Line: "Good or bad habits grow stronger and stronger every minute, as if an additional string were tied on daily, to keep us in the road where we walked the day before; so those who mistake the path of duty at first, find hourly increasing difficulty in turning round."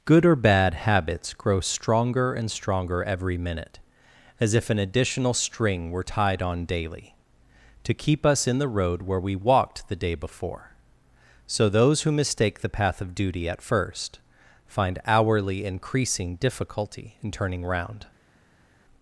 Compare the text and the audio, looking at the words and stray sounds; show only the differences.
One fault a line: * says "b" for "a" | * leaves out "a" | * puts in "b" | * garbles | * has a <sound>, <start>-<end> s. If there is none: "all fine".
all fine